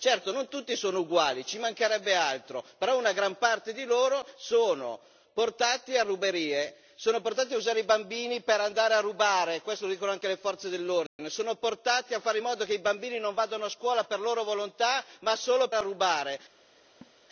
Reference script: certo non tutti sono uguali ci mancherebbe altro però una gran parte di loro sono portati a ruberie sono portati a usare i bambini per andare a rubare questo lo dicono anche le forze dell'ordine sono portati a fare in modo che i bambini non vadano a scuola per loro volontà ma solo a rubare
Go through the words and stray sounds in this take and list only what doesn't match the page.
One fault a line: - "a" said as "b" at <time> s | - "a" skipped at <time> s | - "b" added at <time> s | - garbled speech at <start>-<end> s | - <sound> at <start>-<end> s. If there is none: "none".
- dropout at 11.1-11.2 s
- laugh at 17.0-17.1 s